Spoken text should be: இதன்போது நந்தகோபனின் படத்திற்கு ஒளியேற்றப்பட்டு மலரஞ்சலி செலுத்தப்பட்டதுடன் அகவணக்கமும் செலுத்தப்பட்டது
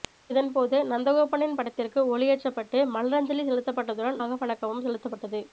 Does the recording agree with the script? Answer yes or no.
yes